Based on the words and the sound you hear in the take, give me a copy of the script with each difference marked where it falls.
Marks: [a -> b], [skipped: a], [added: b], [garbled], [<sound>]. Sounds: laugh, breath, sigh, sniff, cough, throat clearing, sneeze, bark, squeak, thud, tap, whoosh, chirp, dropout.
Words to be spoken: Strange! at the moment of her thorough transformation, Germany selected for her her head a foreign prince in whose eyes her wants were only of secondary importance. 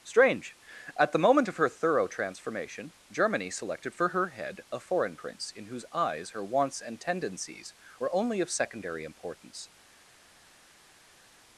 Strange! at the moment of her thorough transformation, Germany selected for her [skipped: her] head a foreign prince in whose eyes her wants [added: and tendencies] were only of secondary importance.